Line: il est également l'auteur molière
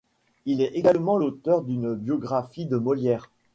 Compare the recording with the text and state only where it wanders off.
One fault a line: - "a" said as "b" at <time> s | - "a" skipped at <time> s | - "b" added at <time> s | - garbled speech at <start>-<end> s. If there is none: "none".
- "d'une biographie de" added at 1.6 s